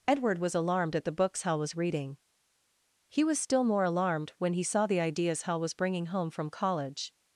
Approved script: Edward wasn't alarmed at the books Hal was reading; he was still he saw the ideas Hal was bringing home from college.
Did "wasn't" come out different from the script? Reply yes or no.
yes